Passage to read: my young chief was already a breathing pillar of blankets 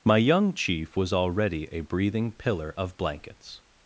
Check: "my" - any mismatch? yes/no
no